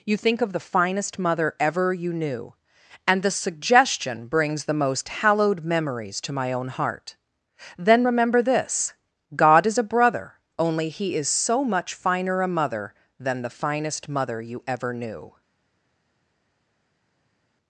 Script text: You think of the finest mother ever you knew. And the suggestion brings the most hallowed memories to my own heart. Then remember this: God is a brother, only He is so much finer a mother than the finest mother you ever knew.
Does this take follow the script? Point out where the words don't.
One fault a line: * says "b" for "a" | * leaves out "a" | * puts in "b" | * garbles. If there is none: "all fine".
all fine